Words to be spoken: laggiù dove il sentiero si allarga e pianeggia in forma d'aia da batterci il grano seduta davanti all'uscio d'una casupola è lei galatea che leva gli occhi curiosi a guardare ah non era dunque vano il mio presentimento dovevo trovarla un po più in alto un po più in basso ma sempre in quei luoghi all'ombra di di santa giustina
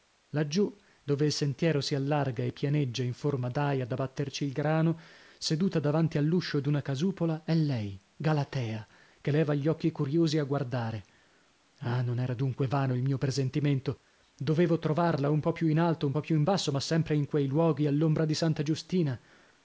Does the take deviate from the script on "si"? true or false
false